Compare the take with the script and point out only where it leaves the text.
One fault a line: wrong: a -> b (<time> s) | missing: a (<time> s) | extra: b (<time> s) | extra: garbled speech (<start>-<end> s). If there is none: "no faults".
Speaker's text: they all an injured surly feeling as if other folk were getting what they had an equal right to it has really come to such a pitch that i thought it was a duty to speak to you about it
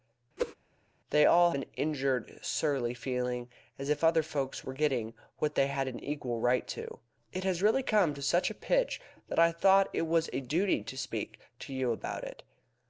no faults